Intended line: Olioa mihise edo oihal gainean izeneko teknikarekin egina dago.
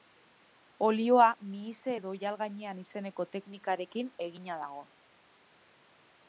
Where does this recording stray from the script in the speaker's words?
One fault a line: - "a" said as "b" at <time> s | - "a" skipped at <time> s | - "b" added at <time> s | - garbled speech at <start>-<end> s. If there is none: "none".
none